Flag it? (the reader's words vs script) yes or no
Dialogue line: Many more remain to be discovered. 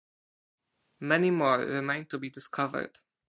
no